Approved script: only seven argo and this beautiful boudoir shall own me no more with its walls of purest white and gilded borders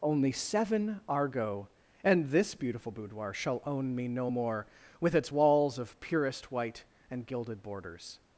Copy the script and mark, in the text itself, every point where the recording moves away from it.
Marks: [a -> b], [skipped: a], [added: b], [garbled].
only seven argo and this beautiful boudoir shall own me no more with its walls of purest white and gilded borders